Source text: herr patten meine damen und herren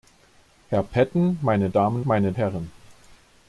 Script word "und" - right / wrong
wrong